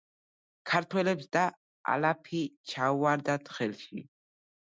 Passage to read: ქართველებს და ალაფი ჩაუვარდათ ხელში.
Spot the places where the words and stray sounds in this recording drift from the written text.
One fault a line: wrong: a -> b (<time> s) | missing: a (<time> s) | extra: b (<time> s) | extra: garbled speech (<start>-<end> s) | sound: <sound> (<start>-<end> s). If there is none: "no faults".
no faults